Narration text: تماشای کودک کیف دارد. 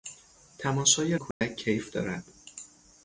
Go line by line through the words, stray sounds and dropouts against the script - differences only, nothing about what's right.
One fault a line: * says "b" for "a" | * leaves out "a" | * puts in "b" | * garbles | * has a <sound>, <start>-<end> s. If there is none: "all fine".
* has a dropout, 1.3-1.4 s